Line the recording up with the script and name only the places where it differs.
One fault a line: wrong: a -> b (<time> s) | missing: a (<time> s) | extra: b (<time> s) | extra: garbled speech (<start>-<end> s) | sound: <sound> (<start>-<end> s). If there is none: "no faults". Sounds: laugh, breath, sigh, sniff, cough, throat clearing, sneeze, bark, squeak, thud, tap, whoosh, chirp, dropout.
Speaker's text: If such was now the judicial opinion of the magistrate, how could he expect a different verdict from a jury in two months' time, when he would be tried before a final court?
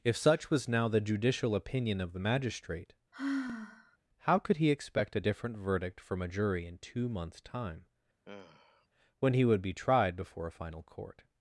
sound: sigh (3.1-4.0 s)
sound: sigh (8.3-8.9 s)